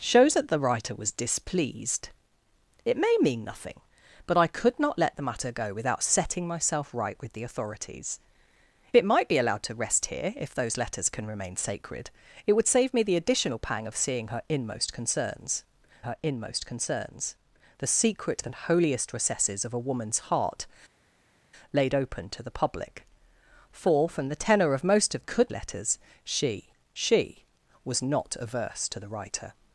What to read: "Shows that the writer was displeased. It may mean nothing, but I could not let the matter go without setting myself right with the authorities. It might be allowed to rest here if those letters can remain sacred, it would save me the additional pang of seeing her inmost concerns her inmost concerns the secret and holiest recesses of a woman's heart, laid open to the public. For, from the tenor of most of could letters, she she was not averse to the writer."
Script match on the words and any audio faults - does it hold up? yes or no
yes